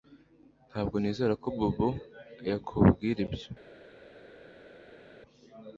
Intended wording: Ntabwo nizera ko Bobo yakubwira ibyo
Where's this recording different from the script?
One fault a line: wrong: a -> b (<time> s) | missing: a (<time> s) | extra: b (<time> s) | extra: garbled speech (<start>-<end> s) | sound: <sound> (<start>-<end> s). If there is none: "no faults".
no faults